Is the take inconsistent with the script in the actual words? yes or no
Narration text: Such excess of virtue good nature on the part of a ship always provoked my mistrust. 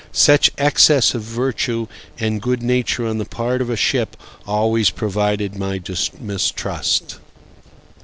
yes